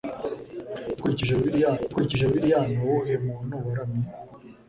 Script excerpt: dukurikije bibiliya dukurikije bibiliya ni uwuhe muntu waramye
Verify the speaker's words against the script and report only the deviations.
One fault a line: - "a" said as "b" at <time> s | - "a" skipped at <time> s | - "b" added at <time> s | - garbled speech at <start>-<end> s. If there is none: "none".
none